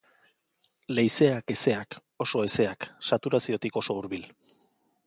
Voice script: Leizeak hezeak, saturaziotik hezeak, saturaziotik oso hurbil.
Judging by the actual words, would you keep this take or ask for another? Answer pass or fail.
fail